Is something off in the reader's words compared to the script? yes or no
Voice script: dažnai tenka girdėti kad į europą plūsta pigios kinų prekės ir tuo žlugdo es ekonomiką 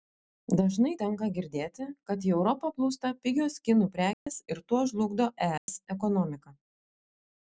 no